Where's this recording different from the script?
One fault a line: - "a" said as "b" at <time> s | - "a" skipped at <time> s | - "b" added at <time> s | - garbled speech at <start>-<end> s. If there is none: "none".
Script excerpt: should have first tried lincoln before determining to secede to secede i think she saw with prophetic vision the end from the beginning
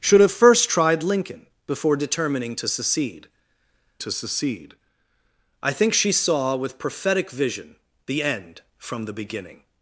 none